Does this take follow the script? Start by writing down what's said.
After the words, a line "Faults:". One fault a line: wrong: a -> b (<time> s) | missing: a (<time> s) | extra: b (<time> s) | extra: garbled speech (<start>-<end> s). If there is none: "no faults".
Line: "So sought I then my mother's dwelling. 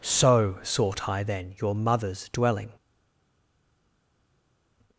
"So sought I then your mother's dwelling.
Faults:
wrong: my -> your (1.6 s)